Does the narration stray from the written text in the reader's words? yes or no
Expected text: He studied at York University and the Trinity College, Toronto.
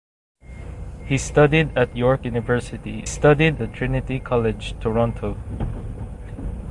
yes